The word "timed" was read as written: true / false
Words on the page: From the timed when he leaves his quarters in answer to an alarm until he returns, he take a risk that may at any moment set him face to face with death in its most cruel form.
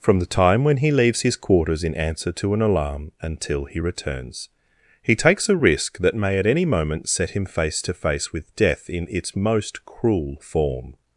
false